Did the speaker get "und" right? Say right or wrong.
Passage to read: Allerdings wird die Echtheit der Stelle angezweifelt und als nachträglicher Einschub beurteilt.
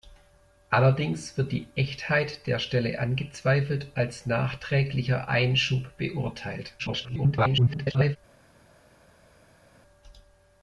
wrong